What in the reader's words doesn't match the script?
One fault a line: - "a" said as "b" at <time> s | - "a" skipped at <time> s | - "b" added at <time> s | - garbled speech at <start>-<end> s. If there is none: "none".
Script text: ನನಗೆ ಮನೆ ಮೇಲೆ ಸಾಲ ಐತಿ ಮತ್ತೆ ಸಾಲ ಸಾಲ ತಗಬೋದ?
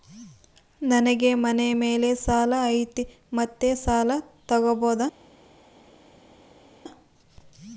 - "ಸಾಲ" skipped at 4.1 s